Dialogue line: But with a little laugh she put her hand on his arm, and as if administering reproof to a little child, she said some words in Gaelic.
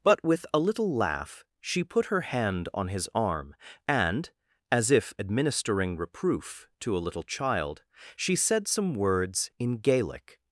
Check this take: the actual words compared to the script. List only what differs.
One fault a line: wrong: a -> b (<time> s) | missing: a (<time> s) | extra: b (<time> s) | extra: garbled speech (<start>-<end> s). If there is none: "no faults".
no faults